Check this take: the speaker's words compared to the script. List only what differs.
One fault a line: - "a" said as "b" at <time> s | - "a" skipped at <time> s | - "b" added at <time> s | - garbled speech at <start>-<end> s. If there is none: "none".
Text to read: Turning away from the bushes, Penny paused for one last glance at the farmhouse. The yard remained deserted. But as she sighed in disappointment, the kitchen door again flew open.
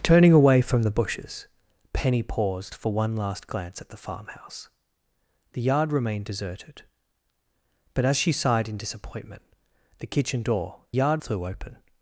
- "again" said as "yard" at 10.9 s